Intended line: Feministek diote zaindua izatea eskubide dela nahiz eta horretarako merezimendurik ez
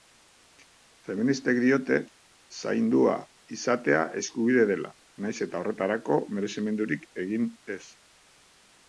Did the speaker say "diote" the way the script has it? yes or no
yes